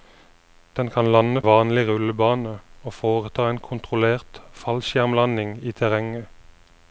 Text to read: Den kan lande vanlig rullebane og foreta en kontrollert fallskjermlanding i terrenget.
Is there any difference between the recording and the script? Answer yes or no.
no